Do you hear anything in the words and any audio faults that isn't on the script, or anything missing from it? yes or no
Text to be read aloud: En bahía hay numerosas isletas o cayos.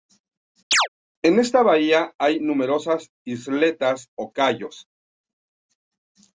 yes